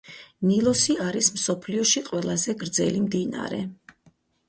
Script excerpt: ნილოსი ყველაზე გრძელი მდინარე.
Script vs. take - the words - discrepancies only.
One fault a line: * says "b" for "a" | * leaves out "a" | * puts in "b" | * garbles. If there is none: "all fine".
* puts in "არის მსოფლიოში"